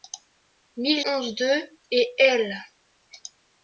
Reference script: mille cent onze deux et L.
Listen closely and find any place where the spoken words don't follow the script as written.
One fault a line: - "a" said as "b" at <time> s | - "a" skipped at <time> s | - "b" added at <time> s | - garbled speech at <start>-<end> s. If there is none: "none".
- "cent" skipped at 1.1 s